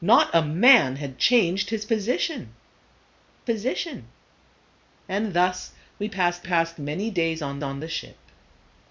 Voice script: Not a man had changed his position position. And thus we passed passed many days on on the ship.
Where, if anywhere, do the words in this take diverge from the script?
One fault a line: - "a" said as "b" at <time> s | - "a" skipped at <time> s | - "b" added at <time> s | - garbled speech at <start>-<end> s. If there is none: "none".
none